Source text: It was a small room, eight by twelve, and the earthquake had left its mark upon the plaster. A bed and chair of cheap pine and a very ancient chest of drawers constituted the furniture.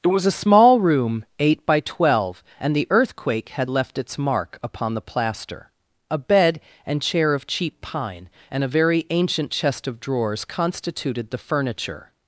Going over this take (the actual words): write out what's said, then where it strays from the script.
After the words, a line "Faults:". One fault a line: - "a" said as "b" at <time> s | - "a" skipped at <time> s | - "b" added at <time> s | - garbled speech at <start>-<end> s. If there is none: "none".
It was a small room, eight by twelve, and the earthquake had left its mark upon the plaster. A bed and chair of cheap pine and a very ancient chest of drawers constituted the furniture.
Faults:
none